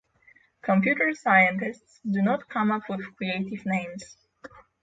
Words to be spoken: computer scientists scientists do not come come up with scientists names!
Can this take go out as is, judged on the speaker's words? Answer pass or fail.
fail